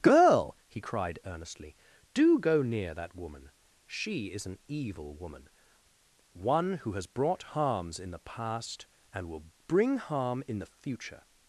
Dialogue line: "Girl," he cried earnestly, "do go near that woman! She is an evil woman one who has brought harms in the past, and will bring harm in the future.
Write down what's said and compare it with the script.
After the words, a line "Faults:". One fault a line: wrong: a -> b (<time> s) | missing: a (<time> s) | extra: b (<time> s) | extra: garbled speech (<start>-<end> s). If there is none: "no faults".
"Girl," he cried earnestly, "do go near that woman! She is an evil woman one who has brought harms in the past, and will bring harm in the future.
Faults:
no faults